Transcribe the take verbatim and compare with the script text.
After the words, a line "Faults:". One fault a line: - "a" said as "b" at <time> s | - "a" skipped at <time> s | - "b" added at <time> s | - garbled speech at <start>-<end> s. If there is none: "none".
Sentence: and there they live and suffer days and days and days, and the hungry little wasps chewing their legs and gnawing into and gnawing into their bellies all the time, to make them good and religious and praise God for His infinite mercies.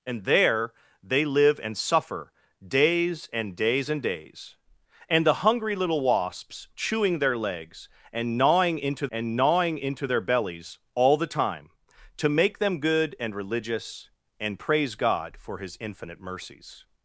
and there they live and suffer days and days and days, and the hungry little wasps chewing their legs and gnawing into and gnawing into their bellies all the time, to make them good and religious and praise God for His infinite mercies.
Faults:
none